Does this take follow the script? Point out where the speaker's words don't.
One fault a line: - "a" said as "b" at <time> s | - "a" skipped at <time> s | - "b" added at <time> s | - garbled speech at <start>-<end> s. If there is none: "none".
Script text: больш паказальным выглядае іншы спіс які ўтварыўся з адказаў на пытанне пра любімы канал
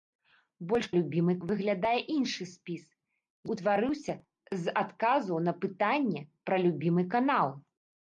- "паказальным" said as "любімы" at 1.0 s
- "які" skipped at 2.8 s